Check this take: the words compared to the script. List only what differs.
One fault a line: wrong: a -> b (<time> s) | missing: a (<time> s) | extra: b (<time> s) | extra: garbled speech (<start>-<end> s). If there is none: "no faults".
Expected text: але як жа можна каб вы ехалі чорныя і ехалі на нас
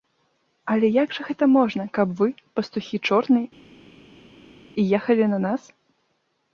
extra: гэта (1.3 s)
wrong: ехалі -> пастухі (2.6 s)